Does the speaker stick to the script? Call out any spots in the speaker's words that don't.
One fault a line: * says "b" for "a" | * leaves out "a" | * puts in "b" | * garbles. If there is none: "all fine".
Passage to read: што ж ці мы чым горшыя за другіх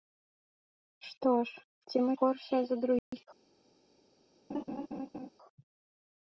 * leaves out "чым"